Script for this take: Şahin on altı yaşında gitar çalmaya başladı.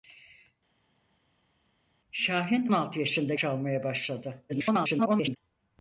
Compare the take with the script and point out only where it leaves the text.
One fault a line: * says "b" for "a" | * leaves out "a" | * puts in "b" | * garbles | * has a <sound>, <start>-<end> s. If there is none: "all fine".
* leaves out "on"
* leaves out "gitar"
* garbles